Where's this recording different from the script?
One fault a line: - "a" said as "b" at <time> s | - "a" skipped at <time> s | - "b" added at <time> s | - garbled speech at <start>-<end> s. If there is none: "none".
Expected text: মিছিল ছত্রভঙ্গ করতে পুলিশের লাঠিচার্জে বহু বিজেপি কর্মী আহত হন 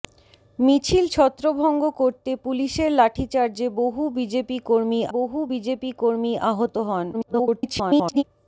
- "বহু বিজেপি কর্মী" added at 5.1 s
- garbled speech at 7.1-8.2 s